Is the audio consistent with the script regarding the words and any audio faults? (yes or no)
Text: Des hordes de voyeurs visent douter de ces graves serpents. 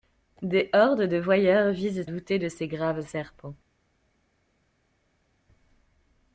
yes